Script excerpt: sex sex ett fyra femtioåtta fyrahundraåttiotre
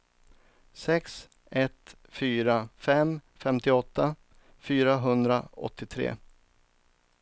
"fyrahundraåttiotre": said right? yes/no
yes